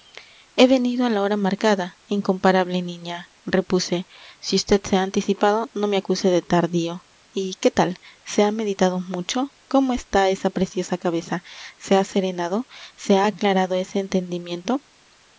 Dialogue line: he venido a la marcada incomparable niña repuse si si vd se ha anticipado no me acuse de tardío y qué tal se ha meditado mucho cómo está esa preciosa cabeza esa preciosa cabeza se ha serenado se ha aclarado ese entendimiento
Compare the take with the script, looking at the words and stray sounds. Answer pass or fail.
fail